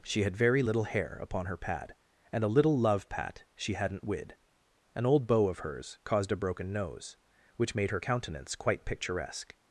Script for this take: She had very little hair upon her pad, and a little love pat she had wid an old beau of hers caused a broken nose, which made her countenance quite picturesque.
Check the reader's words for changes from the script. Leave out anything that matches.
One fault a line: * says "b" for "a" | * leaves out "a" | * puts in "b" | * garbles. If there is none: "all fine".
* says "hadn't" for "had"